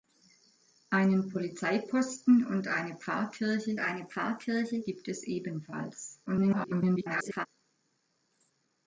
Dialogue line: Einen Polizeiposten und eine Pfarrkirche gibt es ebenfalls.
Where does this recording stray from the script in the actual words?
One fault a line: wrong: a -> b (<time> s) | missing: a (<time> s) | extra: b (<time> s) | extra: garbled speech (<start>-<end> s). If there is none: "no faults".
extra: eine Pfarrkirche (3.8 s)
extra: garbled speech (6.3-7.5 s)